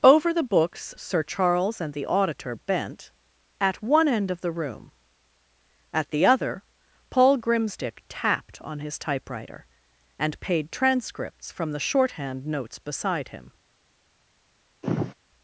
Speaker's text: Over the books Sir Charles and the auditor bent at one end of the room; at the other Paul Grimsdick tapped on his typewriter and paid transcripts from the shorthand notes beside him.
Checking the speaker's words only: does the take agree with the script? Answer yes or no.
yes